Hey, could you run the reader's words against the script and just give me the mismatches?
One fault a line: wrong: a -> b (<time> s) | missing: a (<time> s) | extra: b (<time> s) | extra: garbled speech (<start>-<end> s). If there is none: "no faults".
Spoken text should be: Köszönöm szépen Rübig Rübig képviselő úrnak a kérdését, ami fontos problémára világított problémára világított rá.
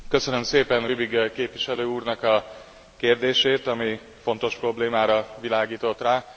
missing: Rübig (1.3 s)
missing: problémára világított (6.0 s)